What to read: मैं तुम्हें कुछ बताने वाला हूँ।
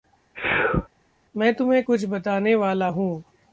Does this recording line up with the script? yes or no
yes